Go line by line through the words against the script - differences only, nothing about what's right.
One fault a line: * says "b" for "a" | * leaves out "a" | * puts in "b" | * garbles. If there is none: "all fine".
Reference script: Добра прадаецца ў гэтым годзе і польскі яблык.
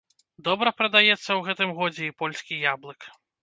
all fine